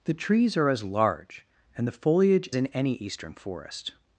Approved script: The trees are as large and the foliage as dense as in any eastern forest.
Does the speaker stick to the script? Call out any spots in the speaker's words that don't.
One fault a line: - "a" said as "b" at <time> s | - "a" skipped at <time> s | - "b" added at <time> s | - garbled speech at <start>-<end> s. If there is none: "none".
- "as dense as" skipped at 2.5 s